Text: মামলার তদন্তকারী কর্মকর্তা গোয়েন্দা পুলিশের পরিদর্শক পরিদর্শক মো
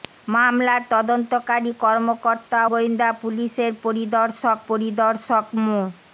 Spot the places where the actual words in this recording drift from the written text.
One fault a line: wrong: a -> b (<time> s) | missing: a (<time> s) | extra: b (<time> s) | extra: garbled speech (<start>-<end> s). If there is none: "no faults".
no faults